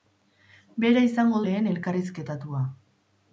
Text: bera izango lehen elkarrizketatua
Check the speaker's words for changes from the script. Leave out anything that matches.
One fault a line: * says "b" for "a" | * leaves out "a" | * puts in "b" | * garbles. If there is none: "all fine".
all fine